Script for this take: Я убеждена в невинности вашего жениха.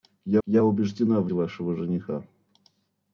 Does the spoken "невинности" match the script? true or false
false